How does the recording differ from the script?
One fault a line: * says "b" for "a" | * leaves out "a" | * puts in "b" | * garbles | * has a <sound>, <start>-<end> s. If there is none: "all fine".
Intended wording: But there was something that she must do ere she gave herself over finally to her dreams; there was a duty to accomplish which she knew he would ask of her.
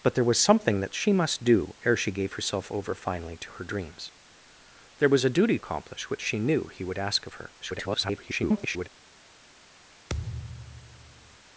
* leaves out "to"
* garbles
* has a thud, 10.1-11.4 s